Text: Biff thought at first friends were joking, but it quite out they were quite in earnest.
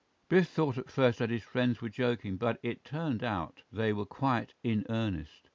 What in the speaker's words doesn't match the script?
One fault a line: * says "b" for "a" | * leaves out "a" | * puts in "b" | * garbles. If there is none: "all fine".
* puts in "that his"
* says "turned" for "quite"